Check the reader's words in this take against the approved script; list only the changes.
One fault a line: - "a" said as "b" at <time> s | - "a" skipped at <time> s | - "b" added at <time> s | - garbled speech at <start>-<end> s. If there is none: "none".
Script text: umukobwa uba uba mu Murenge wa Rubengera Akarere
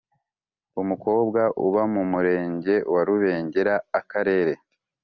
- "uba" skipped at 1.8 s